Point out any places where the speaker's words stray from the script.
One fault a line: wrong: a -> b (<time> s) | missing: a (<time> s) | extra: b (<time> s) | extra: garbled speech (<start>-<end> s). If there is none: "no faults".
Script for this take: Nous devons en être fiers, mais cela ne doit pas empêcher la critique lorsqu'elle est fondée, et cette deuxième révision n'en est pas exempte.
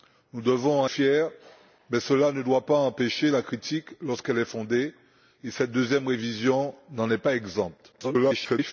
missing: être (0.9 s)
extra: garbled speech (7.9-8.7 s)